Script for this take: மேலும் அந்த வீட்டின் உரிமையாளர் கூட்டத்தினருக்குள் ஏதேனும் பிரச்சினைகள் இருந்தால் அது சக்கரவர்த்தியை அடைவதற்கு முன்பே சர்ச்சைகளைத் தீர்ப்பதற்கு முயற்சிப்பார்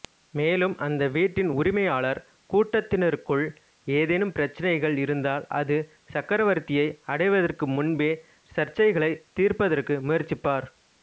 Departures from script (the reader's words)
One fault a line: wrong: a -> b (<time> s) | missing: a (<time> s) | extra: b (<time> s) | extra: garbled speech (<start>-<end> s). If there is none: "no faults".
no faults